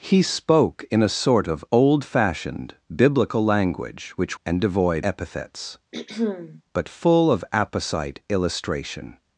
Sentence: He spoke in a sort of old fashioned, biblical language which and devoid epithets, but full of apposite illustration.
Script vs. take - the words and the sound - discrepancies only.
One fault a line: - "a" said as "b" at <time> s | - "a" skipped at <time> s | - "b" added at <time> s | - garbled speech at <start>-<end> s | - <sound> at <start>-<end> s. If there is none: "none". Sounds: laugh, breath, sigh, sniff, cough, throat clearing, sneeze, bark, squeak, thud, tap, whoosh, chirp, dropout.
- throat clearing at 5.9-6.6 s